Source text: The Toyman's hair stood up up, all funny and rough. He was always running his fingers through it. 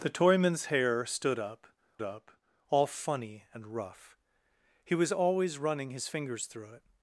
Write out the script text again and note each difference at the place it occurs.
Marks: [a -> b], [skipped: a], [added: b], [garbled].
The Toyman's hair stood up up, all funny and rough. He was always running his fingers through it.